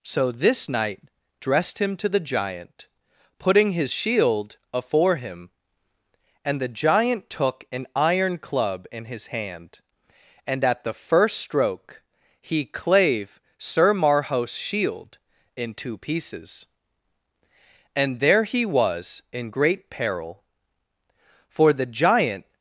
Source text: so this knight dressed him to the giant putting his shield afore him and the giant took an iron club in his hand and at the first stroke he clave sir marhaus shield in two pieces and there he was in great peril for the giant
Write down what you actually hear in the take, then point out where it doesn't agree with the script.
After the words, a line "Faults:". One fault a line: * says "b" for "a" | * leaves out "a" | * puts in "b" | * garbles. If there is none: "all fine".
so this knight dressed him to the giant putting his shield afore him and the giant took an iron club in his hand and at the first stroke he clave sir marhaus shield in two pieces and there he was in great peril for the giant
Faults:
all fine